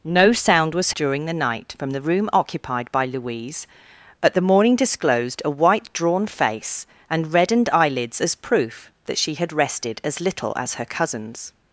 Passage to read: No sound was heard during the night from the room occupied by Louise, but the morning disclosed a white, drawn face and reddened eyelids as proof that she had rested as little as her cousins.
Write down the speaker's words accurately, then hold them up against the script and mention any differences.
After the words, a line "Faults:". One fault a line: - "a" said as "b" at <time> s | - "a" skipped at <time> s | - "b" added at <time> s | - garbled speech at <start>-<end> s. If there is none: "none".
No sound was during the night from the room occupied by Louise, but the morning disclosed a white, drawn face and reddened eyelids as proof that she had rested as little as her cousins.
Faults:
- "heard" skipped at 0.9 s